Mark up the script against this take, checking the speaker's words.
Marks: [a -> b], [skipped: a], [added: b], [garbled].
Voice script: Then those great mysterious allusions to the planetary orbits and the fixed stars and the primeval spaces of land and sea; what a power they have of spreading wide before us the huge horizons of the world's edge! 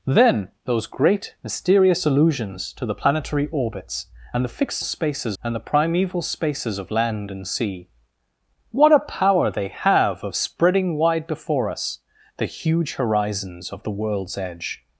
Then those great mysterious allusions to the planetary orbits and the fixed [stars -> spaces] and the primeval spaces of land and sea; what a power they have of spreading wide before us the huge horizons of the world's edge!